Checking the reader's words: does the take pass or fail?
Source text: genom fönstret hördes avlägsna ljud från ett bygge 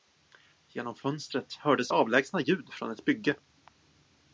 pass